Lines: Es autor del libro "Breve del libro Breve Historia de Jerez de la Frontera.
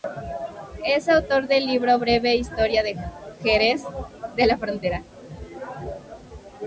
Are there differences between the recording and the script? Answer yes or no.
yes